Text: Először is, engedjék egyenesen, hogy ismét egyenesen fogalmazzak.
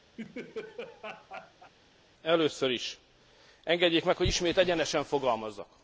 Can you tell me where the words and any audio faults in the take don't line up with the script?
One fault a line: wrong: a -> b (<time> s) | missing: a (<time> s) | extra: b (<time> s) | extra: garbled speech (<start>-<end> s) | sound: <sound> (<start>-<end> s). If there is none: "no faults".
sound: laugh (0.2-1.7 s)
wrong: egyenesen -> meg (4.0 s)